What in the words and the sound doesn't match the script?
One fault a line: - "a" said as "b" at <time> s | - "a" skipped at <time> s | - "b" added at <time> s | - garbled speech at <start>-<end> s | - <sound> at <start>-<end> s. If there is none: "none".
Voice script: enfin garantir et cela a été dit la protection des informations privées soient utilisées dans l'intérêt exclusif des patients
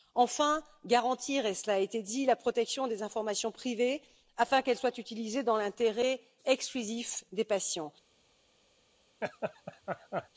- "afin qu'elles" added at 4.4 s
- laugh at 9.2-10.3 s